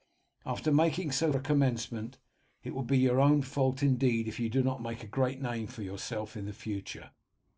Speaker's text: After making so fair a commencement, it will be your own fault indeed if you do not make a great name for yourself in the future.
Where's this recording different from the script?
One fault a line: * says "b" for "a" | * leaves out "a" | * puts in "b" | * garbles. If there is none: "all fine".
* leaves out "fair"